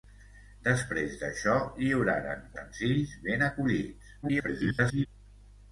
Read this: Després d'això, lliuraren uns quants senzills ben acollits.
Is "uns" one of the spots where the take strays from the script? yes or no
yes